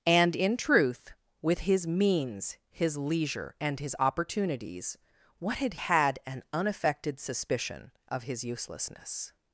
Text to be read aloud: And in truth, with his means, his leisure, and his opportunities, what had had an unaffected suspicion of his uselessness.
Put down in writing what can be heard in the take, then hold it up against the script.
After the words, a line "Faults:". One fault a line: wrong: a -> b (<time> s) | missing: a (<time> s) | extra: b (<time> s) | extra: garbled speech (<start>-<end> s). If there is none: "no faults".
And in truth, with his means, his leisure, and his opportunities, what had had an unaffected suspicion of his uselessness.
Faults:
no faults